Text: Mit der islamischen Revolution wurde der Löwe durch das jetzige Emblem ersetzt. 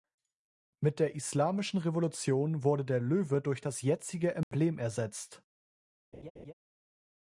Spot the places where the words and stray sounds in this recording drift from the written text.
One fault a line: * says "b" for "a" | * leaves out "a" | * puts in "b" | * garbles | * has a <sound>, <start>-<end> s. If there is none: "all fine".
* has a dropout, 4.4-4.5 s
* has a laugh, 6.1-6.5 s